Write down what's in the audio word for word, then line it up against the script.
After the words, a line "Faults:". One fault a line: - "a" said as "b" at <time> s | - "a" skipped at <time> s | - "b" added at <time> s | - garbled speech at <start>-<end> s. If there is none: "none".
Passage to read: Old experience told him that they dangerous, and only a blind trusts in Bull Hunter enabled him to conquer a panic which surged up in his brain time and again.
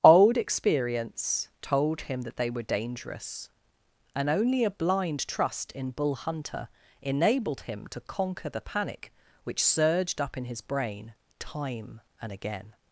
Old experience told him that they were dangerous, and only a blind trust in Bull Hunter enabled him to conquer the panic which surged up in his brain time and again.
Faults:
- "were" added at 2.5 s
- "trusts" said as "trust" at 5.3 s
- "a" said as "the" at 8.5 s